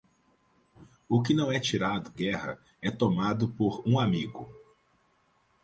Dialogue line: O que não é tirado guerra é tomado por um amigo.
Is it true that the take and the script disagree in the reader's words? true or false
false